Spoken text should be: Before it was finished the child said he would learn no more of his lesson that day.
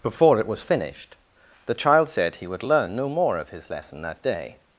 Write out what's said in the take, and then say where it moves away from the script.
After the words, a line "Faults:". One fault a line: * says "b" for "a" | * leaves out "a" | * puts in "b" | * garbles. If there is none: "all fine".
Before it was finished the child said he would learn no more of his lesson that day.
Faults:
all fine